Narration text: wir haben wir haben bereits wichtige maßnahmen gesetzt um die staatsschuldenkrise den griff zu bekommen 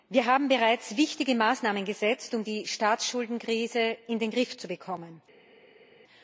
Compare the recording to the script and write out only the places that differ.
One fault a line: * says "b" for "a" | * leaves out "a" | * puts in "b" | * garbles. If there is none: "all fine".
* leaves out "wir haben"
* puts in "in"